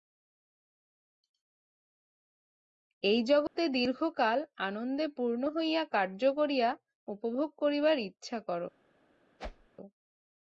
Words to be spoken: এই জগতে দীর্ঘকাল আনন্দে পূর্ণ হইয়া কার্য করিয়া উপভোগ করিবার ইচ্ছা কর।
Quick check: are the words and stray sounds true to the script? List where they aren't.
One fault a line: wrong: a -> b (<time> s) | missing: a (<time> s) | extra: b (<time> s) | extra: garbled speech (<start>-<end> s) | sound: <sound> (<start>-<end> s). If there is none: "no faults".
sound: dropout (3.5-3.6 s)
sound: whoosh (9.4-9.7 s)